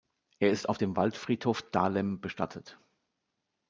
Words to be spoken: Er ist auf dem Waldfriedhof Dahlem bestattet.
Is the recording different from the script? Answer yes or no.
no